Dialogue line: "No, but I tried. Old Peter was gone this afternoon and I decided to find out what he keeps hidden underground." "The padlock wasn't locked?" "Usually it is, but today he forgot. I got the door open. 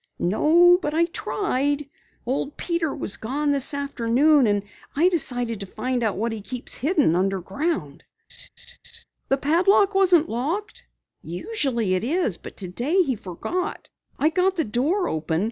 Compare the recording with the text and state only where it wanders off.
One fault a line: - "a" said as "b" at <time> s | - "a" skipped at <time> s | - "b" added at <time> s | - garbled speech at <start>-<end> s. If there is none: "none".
none